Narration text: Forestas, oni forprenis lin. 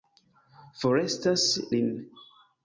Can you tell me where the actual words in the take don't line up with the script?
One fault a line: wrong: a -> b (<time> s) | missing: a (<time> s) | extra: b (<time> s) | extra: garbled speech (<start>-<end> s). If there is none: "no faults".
missing: oni forprenis (1.4 s)